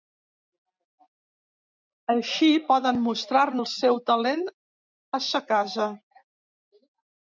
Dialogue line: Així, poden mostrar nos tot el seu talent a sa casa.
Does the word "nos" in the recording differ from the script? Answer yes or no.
yes